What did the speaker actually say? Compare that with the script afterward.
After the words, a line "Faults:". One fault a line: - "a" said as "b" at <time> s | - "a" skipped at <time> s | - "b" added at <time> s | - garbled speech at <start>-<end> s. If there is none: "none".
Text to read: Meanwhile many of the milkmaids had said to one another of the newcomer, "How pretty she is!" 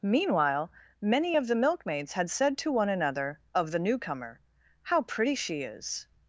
Meanwhile many of the milkmaids had said to one another of the newcomer, "How pretty she is!"
Faults:
none